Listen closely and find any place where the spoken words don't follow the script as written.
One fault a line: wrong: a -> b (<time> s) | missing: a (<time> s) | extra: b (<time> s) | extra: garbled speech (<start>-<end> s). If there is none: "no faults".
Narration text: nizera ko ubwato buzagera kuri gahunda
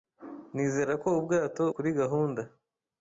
missing: buzagera (1.6 s)